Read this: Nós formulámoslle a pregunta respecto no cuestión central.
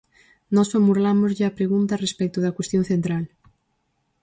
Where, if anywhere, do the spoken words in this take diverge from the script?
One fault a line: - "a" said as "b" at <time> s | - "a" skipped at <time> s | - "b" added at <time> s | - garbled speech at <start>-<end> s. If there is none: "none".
- "no" said as "da" at 2.4 s